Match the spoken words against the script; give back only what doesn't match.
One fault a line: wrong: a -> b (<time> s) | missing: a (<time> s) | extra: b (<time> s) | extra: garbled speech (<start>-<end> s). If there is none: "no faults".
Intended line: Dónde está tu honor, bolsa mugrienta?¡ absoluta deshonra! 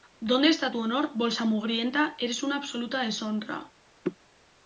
extra: eres una (2.2 s)